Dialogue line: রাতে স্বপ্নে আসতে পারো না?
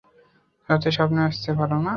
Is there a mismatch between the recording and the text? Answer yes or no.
no